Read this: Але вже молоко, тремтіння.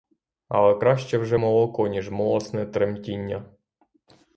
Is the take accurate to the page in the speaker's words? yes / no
no